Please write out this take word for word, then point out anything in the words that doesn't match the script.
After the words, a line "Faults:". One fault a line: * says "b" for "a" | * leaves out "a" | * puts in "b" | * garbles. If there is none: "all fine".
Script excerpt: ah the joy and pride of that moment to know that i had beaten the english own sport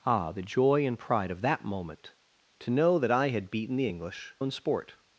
ah the joy and pride of that moment to know that i had beaten the english own sport
Faults:
all fine